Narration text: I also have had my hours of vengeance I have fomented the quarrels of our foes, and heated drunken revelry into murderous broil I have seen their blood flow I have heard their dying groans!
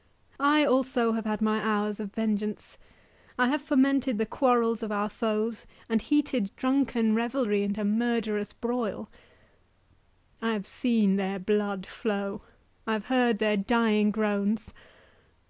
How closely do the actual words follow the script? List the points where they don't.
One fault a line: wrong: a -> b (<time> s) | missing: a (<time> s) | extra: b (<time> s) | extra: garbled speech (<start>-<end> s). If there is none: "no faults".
no faults